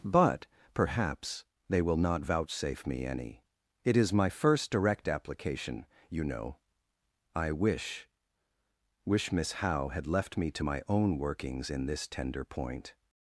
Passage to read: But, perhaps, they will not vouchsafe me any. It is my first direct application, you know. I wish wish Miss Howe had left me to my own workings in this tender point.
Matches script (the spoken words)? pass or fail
pass